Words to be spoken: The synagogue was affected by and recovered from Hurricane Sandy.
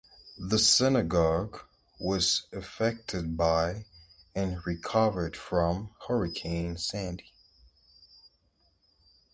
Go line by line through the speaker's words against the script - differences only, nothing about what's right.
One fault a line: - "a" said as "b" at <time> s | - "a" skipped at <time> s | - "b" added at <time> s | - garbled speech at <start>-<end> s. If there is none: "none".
none